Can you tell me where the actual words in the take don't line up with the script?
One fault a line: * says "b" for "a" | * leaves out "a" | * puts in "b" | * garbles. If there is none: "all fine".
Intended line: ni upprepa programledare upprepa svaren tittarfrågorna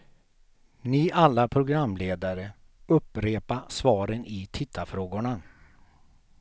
* says "alla" for "upprepa"
* puts in "i"